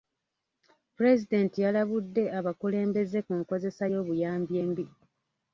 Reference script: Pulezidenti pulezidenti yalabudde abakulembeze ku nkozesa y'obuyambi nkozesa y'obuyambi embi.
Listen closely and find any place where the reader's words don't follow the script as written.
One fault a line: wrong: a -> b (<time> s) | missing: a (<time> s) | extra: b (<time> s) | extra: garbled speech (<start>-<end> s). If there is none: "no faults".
missing: pulezidenti (1.6 s)
missing: nkozesa y'obuyambi (4.5 s)